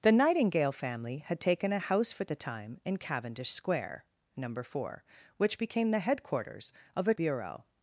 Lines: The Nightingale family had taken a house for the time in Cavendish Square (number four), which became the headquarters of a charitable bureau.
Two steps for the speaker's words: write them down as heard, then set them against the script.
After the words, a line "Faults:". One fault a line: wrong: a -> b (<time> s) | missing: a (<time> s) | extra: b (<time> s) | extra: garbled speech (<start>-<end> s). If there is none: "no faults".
The Nightingale family had taken a house for the time in Cavendish Square (number four), which became the headquarters of a bureau.
Faults:
missing: charitable (7.1 s)